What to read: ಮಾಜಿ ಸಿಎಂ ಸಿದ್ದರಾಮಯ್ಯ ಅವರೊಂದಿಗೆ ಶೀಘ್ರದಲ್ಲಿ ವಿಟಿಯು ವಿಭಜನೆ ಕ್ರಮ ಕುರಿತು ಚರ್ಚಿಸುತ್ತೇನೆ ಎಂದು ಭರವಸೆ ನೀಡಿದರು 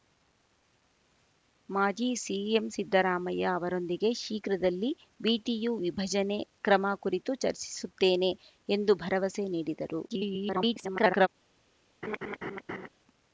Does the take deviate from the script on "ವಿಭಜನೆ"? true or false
false